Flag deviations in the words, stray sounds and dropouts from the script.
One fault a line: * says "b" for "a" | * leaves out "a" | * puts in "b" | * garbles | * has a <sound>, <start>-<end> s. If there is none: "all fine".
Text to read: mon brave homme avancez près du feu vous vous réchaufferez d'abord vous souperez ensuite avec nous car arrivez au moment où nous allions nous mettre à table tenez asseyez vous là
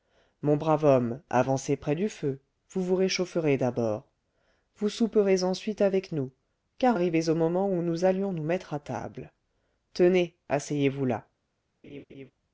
* has a laugh, 11.8-12.3 s